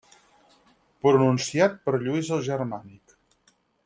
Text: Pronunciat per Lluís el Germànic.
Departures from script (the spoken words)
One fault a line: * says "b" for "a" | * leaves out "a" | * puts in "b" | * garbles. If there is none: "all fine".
all fine